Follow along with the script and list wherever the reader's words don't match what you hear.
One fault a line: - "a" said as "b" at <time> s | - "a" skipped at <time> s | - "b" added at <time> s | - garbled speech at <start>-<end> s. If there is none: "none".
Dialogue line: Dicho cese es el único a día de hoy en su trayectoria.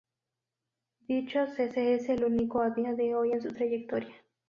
none